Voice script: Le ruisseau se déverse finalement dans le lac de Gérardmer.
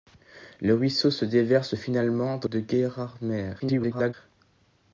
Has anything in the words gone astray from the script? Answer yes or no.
yes